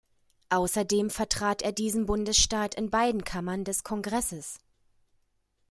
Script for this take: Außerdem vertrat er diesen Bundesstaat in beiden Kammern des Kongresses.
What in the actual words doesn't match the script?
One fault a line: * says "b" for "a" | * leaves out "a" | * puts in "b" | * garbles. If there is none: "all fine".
all fine